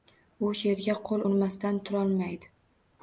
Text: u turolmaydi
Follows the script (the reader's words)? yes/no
no